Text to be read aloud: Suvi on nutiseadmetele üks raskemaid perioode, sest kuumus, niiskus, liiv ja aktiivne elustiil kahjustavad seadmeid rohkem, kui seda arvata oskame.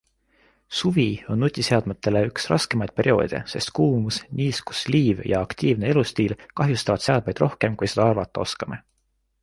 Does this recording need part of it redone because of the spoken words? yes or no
no